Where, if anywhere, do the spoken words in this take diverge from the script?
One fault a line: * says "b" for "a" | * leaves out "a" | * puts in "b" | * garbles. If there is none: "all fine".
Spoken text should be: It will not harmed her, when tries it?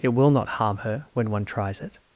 * says "harm" for "harmed"
* puts in "one"